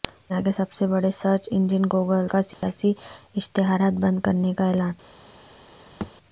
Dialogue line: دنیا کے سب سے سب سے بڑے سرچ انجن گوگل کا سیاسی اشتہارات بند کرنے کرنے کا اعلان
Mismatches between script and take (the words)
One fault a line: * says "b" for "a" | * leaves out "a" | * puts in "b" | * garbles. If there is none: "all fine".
* leaves out "سب سے"
* leaves out "کرنے"